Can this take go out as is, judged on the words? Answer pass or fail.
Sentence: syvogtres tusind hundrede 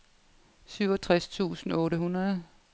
fail